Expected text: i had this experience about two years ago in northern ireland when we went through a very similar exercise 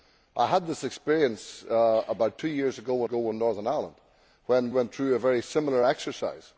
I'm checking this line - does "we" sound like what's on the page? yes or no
no